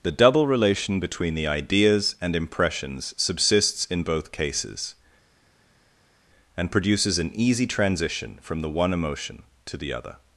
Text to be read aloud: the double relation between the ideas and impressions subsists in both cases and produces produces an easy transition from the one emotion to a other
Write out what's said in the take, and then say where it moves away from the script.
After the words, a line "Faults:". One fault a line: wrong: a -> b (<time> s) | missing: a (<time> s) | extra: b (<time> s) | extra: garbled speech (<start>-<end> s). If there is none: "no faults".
the double relation between the ideas and impressions subsists in both cases and produces an easy transition from the one emotion to the other
Faults:
missing: produces (7.2 s)
wrong: a -> the (9.8 s)